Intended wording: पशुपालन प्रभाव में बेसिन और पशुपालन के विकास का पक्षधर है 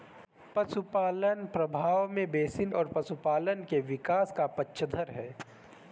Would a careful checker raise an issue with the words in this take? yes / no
no